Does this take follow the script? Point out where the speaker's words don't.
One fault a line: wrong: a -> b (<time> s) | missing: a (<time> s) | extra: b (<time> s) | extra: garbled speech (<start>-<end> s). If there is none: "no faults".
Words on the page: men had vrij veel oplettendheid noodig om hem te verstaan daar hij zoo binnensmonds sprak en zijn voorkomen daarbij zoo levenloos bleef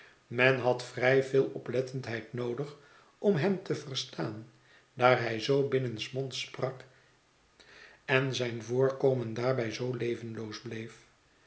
no faults